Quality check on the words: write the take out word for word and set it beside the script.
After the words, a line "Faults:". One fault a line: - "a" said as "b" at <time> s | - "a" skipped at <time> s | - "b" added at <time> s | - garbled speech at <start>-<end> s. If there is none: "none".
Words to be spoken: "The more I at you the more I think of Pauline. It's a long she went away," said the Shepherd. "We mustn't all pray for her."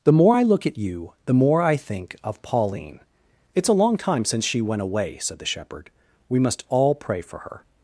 "The more I look at you the more I think of Pauline. It's a long time since she went away," said the Shepherd. "We must all pray for her."
Faults:
- "look" added at 0.4 s
- "time since" added at 4.0 s
- "mustn't" said as "must" at 6.4 s